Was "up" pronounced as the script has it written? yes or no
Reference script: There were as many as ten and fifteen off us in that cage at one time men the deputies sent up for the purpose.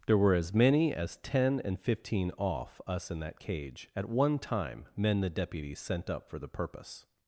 yes